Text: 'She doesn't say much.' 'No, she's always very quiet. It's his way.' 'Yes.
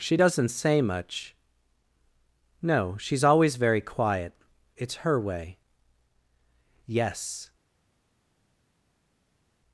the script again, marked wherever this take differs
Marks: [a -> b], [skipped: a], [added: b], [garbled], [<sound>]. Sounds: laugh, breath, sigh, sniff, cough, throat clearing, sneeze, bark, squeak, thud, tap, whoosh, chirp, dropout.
'She doesn't say much.' 'No, she's always very quiet. It's [his -> her] way.' 'Yes.